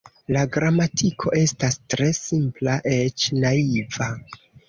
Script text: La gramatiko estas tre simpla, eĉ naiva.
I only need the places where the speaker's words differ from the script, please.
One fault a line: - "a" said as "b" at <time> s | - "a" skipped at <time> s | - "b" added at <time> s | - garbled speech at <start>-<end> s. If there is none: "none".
none